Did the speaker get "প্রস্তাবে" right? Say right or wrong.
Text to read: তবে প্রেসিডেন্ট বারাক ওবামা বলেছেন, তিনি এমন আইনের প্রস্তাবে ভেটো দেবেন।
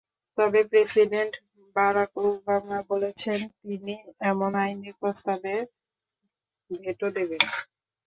right